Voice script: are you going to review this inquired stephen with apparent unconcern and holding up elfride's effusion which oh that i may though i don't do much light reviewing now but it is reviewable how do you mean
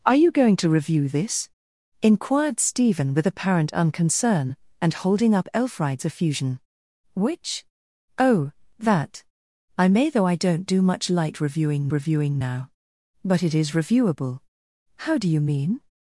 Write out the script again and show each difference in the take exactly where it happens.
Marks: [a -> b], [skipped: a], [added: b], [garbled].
are you going to review this inquired stephen with apparent unconcern and holding up elfride's effusion which oh that i may though i don't do much light reviewing [added: reviewing] now but it is reviewable how do you mean